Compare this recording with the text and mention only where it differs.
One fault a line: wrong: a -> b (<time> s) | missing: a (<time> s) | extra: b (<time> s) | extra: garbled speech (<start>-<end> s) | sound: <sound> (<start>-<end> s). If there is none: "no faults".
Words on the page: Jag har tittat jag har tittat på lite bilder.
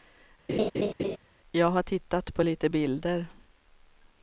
sound: laugh (0.5-1.2 s)
missing: jag har tittat (2.3 s)